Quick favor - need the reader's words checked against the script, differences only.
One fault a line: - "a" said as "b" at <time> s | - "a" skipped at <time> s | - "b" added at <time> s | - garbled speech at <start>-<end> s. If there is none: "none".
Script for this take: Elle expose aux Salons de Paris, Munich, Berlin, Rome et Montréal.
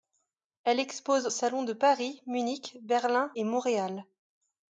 - "aux" skipped at 1.3 s
- "Rome" skipped at 3.3 s